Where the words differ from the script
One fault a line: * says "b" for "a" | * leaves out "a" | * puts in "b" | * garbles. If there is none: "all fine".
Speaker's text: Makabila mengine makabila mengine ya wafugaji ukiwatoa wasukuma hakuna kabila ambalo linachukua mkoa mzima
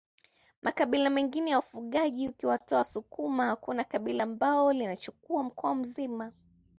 * leaves out "makabila mengine"